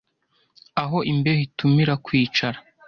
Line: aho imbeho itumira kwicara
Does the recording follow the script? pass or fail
pass